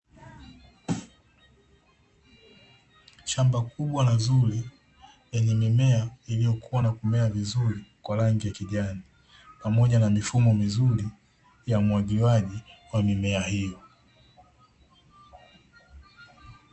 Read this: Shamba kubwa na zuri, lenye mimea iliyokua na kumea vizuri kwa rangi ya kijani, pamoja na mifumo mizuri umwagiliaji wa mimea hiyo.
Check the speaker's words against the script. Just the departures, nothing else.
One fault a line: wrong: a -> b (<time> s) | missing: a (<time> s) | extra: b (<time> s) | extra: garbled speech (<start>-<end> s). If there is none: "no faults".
extra: ya (11.7 s)